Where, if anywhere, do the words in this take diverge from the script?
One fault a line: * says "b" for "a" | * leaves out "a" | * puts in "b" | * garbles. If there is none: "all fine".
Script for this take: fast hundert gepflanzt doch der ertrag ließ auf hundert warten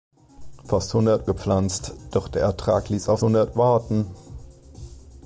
all fine